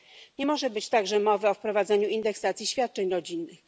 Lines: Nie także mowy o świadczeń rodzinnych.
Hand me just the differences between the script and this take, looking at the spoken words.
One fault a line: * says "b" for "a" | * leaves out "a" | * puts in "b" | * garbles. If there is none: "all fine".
* puts in "może być"
* puts in "wprowadzeniu indeksacji"